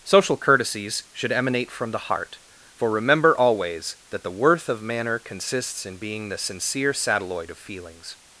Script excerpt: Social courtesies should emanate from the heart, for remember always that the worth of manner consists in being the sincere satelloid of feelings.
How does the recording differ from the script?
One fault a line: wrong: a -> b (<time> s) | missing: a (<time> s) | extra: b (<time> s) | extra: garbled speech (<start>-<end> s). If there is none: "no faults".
no faults